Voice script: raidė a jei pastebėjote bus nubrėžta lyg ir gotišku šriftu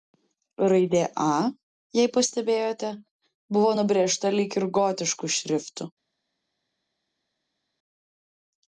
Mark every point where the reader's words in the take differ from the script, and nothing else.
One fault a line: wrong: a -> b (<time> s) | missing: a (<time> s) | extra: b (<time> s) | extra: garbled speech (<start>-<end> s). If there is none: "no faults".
wrong: bus -> buvo (3.6 s)